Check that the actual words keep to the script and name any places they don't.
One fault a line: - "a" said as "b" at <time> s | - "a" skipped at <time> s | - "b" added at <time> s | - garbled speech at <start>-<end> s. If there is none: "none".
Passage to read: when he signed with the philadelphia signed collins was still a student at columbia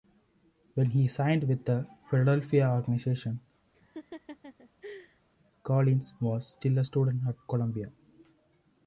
- "signed" said as "organization" at 2.7 s